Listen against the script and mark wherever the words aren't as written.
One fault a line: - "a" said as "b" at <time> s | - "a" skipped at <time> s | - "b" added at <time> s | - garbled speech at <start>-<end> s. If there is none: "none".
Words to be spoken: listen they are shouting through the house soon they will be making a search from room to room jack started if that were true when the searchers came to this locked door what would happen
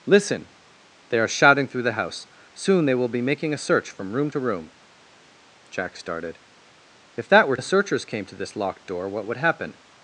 - "true when" skipped at 7.6 s